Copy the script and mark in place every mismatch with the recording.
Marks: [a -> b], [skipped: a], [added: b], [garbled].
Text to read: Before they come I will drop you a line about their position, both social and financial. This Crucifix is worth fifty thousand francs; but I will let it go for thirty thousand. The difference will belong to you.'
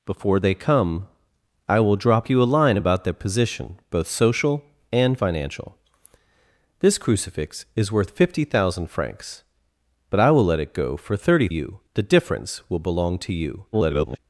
Before they come I will drop you a line about their position, both social and financial. This Crucifix is worth fifty thousand francs; but I will let it go for thirty [thousand. -> you] The difference will belong to you.' [garbled]